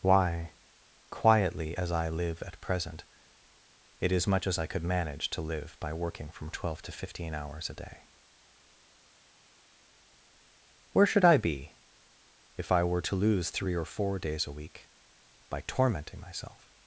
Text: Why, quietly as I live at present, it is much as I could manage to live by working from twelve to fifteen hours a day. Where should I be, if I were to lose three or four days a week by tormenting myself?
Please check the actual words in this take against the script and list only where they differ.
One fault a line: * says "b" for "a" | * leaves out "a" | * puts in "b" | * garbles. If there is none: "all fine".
all fine